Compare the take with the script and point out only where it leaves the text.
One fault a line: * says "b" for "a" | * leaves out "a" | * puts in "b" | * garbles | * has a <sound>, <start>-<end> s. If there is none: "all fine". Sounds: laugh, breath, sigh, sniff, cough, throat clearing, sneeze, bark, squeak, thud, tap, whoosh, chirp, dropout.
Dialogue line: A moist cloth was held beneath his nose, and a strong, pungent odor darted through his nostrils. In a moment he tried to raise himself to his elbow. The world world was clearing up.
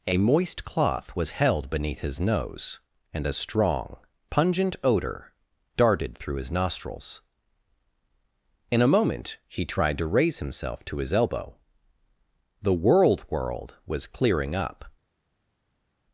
all fine